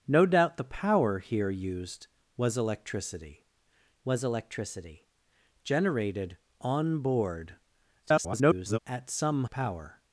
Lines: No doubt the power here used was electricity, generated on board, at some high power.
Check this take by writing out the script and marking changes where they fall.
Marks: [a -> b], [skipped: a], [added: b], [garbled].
No doubt the power here used was electricity, [added: was electricity] generated on board, [garbled] at some [skipped: high] power.